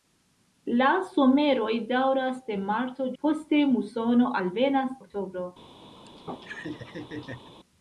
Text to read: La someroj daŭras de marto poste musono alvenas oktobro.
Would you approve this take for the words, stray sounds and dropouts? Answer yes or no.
no